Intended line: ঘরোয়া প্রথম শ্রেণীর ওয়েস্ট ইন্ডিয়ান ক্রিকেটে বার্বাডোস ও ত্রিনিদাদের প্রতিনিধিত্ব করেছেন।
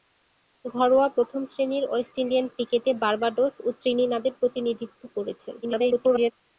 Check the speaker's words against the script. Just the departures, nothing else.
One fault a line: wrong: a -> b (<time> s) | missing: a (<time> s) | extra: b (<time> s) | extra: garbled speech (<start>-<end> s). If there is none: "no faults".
extra: garbled speech (5.6-6.3 s)